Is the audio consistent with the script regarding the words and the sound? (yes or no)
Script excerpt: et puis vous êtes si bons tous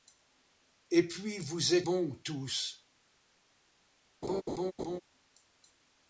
no